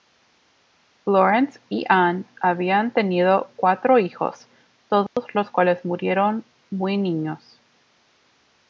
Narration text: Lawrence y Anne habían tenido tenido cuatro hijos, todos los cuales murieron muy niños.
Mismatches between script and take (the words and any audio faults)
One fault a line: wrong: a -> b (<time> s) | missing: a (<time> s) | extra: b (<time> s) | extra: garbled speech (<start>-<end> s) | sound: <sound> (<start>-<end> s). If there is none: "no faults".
missing: tenido (3.5 s)
sound: dropout (5.1-5.2 s)